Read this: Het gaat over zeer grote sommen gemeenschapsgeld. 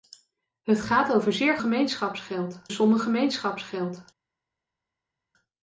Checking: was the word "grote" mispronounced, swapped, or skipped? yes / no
yes